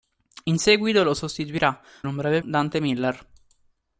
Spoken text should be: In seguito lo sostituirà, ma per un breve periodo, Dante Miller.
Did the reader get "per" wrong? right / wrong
wrong